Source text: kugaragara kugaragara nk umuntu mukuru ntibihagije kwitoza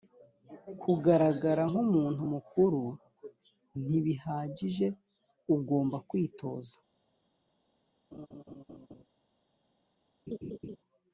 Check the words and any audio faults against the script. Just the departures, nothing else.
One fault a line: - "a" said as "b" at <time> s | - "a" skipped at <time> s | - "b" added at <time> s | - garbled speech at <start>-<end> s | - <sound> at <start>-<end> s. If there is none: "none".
- "kugaragara" skipped at 1.6 s
- "ugomba" added at 5.5 s
- laugh at 8.1-9.0 s
- laugh at 10.3-10.8 s